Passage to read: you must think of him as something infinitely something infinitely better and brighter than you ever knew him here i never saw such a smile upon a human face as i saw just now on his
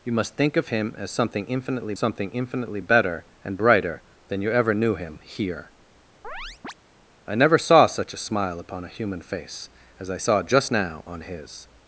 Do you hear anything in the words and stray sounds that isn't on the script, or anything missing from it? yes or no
yes